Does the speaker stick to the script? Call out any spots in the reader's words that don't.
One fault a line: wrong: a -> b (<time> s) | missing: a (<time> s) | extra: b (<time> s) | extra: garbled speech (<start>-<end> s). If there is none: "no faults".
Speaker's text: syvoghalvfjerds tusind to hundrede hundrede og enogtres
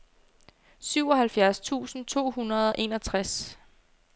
missing: hundrede (2.7 s)